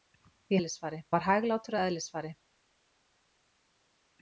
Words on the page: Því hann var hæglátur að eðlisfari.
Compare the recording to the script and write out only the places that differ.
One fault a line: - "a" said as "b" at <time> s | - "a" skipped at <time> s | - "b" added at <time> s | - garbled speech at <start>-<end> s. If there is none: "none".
- "hann" said as "eðlisfari" at 0.6 s